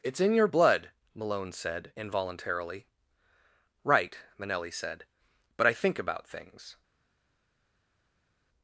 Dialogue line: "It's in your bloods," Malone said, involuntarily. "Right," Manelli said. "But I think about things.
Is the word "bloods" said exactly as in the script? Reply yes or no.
no